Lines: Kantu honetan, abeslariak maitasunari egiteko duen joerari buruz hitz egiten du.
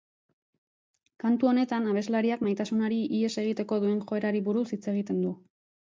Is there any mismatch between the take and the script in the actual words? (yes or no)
yes